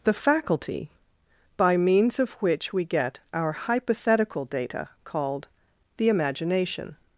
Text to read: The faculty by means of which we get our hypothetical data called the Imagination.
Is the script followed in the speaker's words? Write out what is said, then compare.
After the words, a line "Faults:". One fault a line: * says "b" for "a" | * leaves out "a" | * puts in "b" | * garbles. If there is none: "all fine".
The faculty by means of which we get our hypothetical data called the Imagination.
Faults:
all fine